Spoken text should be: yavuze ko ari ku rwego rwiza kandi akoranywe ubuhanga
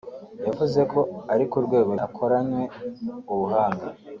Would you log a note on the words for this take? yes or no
yes